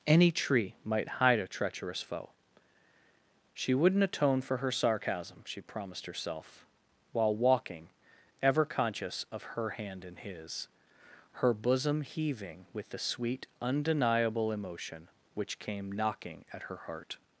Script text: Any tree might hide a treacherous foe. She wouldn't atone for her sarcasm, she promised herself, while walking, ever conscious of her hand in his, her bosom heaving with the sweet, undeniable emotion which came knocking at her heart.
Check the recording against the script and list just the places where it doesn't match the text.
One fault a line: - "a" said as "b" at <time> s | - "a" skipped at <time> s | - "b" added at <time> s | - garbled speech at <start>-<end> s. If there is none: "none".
none